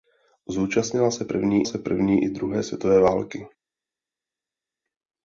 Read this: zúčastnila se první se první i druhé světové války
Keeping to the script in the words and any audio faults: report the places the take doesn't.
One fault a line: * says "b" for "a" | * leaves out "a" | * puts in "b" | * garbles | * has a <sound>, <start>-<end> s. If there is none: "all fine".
all fine